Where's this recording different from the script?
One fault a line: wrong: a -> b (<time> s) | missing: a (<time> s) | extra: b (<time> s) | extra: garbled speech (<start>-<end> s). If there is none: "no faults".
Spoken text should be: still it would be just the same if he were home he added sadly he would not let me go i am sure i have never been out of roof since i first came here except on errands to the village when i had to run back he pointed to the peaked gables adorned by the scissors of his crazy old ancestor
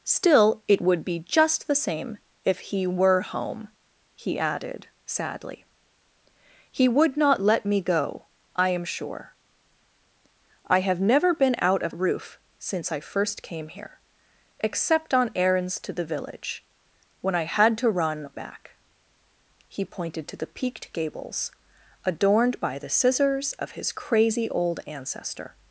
no faults